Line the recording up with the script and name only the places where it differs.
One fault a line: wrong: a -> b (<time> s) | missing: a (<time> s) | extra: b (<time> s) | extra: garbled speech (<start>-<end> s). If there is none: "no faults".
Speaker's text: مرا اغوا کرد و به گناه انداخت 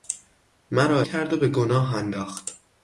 missing: اغوا (1.0 s)